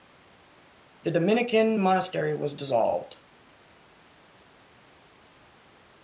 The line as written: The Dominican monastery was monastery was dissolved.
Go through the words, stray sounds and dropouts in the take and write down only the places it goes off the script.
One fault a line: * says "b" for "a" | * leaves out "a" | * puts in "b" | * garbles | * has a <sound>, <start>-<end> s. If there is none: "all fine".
* leaves out "monastery was"